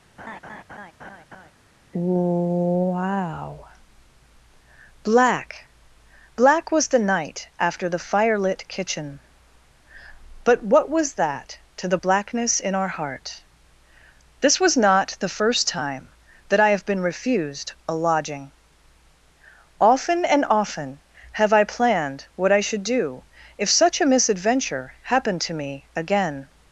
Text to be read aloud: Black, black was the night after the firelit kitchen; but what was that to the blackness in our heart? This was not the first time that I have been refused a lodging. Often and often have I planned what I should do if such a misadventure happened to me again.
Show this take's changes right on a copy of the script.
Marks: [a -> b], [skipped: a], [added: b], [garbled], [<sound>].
[laugh] [added: wow] Black, black was the night after the firelit kitchen; but what was that to the blackness in our heart? This was not the first time that I have been refused a lodging. Often and often have I planned what I should do if such a misadventure happened to me again.